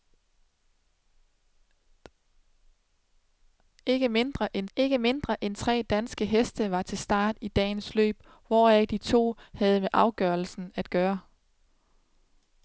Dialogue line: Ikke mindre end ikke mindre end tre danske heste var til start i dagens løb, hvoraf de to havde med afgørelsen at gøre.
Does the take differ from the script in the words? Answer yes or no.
no